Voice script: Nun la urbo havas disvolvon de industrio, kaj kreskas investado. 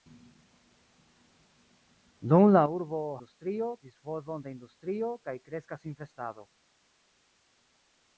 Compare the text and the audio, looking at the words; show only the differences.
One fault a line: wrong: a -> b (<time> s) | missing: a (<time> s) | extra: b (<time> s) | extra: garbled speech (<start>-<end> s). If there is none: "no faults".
wrong: havas -> industrio (3.2 s)